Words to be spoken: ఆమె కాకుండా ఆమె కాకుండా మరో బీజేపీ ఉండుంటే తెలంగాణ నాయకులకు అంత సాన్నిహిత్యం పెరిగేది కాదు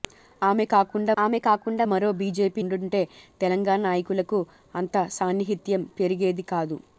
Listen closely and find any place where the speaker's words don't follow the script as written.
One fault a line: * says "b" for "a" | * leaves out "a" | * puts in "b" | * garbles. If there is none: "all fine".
all fine